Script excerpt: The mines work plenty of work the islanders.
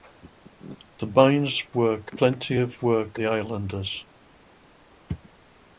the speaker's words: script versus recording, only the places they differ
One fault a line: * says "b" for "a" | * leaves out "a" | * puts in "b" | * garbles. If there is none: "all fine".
all fine